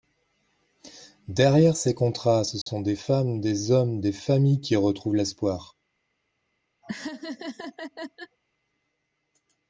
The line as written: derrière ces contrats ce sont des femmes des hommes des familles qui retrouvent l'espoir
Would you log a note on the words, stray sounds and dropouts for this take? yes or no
yes